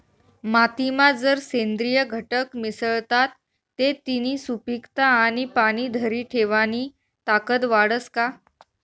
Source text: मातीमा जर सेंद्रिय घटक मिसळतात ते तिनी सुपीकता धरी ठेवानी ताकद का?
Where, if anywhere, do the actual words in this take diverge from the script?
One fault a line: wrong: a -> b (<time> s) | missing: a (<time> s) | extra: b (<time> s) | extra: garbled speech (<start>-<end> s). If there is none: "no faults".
extra: आणि पाणी (5.2 s)
extra: वाढस (7.7 s)